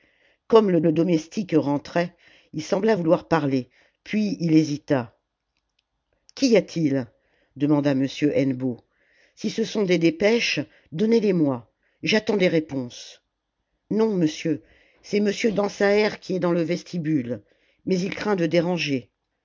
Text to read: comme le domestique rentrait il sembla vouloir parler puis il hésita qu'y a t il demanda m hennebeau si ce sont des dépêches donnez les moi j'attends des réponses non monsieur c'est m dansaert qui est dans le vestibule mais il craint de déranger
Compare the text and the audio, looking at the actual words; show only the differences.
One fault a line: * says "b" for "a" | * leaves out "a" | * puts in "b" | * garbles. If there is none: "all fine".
* puts in "le"